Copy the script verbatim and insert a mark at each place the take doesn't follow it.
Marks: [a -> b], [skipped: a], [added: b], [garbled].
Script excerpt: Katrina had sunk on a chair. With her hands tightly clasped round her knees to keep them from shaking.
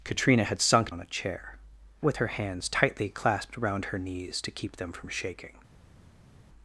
Katrina had sunk on a chair. With her hands tightly clasped round her knees to keep them from shaking.